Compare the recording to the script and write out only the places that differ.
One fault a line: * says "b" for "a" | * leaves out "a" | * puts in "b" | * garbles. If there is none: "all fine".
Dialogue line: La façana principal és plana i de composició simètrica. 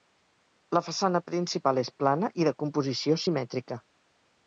all fine